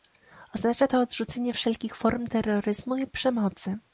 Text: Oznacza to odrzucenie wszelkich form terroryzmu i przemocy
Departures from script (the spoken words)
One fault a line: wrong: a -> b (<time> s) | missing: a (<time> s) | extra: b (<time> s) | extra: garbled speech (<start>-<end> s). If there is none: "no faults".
no faults